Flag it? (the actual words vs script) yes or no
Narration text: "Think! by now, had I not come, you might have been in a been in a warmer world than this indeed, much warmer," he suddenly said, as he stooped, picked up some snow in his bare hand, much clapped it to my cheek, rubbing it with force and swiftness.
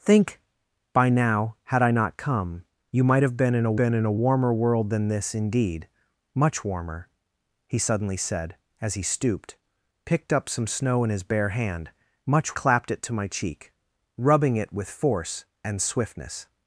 no